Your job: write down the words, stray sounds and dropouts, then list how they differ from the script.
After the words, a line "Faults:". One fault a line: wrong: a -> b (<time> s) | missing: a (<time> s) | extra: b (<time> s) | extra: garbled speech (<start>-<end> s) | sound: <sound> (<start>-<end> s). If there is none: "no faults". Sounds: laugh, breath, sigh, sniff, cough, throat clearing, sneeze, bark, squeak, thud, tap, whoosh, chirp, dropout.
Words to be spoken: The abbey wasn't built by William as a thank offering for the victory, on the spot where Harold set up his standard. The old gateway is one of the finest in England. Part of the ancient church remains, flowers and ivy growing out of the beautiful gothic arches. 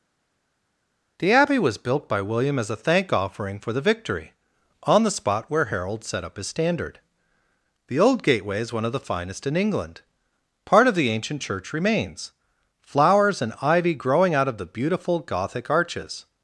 The abbey was built by William as a thank offering for the victory, on the spot where Harold set up his standard. The old gateway is one of the finest in England. Part of the ancient church remains, flowers and ivy growing out of the beautiful gothic arches.
Faults:
wrong: wasn't -> was (1.6 s)